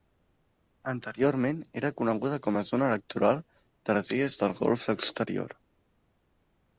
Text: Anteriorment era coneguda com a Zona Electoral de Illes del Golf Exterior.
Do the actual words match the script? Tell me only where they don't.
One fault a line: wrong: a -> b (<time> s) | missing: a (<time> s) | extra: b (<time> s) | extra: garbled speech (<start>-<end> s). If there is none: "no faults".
extra: les (4.0 s)